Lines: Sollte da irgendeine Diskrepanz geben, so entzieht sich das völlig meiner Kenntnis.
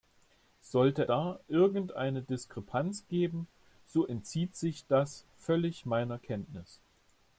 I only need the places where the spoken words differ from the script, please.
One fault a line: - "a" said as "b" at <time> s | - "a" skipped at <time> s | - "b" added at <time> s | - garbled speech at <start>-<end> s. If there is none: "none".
none